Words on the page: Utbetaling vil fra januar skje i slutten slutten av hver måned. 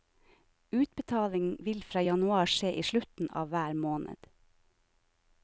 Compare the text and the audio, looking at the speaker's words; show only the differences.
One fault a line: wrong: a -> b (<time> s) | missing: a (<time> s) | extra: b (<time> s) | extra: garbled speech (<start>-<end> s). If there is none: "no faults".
missing: slutten (3.3 s)